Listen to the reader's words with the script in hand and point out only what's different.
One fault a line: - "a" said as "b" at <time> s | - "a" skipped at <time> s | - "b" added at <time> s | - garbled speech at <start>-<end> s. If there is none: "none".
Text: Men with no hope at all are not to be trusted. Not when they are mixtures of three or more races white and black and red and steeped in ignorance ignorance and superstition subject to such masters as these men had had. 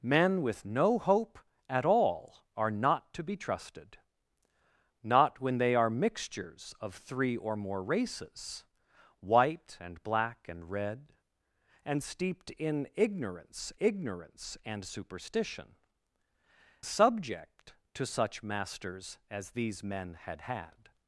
none